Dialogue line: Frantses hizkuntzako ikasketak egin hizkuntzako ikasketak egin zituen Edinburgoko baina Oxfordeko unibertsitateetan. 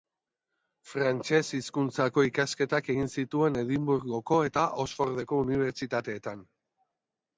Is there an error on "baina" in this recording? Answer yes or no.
yes